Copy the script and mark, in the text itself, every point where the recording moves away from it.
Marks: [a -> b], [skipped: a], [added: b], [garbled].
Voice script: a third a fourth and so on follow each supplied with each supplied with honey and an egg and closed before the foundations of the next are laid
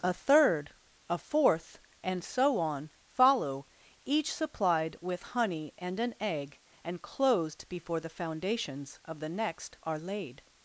a third a fourth and so on follow each supplied with [skipped: each supplied with] honey and an egg and closed before the foundations of the next are laid